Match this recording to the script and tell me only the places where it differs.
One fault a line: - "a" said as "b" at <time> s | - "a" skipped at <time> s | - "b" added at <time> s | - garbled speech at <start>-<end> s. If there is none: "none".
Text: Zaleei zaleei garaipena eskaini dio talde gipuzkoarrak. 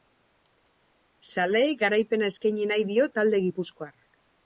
- "zaleei" skipped at 1.8 s
- "nahi" added at 2.7 s